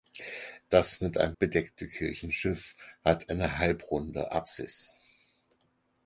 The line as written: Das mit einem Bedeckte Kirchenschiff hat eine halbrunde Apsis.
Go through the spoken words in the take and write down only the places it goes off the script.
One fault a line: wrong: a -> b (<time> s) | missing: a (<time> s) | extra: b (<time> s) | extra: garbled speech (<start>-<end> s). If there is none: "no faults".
no faults